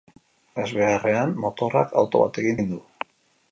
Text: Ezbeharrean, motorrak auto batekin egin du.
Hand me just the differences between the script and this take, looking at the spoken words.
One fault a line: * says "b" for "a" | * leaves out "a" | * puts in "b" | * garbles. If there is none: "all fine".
all fine